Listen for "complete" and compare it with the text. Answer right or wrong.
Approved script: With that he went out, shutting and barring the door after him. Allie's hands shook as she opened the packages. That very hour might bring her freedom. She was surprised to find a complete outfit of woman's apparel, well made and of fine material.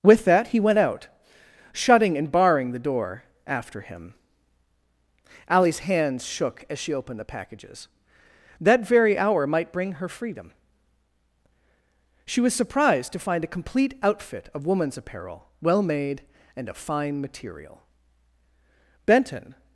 right